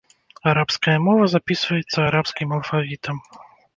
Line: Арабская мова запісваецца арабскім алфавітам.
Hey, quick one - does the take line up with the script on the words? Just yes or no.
yes